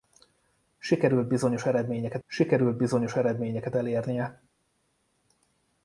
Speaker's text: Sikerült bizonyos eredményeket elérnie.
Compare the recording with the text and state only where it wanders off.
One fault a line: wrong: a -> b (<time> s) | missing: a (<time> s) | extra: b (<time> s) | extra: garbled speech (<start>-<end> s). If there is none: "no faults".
extra: sikerült bizonyos eredményeket (2.2 s)